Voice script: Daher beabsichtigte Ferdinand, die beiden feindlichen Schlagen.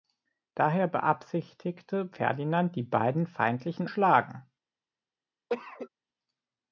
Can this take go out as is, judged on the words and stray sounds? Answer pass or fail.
fail